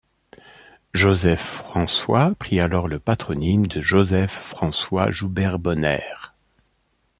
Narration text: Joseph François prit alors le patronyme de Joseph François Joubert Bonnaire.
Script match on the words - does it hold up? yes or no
yes